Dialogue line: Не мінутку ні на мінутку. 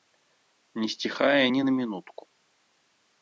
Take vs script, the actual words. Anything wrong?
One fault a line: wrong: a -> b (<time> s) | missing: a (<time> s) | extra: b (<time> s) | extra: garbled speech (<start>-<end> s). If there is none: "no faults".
wrong: мінутку -> сціхае (0.9 s)